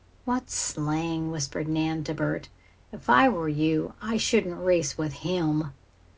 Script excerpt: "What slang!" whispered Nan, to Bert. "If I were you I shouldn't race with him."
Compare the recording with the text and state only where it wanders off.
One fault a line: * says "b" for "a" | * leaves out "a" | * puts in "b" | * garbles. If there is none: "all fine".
all fine